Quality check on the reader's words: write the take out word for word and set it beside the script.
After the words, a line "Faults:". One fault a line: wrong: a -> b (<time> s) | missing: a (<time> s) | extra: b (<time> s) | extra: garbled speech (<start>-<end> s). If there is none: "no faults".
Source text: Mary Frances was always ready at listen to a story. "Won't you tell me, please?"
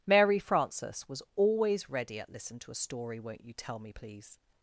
Mary Frances was always ready at listen to a story. "Won't you tell me, please?"
Faults:
no faults